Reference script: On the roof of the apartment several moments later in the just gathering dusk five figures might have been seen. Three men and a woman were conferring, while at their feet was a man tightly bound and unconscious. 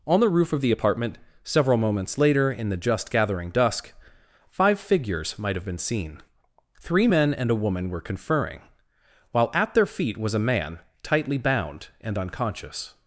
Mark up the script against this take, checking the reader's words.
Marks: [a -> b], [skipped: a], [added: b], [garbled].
On the roof of the apartment several moments later in the just gathering dusk five figures might have been seen. Three men and a woman were conferring, while at their feet was a man tightly bound and unconscious.